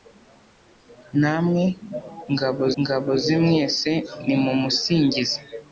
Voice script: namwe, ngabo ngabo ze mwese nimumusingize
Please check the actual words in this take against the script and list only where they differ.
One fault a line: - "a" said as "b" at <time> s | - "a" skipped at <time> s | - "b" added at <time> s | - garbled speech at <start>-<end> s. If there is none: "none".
none